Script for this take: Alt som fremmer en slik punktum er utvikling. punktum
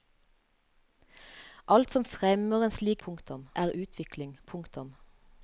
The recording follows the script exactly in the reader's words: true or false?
true